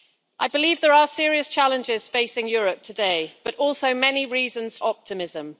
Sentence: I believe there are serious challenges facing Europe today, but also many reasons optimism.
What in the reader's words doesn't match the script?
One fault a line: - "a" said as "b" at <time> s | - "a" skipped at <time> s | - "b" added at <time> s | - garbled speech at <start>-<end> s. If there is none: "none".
none